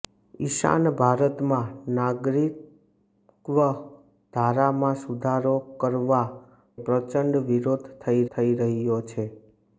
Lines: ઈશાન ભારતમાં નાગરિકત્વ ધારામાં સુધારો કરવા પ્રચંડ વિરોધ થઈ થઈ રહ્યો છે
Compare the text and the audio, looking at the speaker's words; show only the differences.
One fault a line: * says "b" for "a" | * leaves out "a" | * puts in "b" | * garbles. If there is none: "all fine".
all fine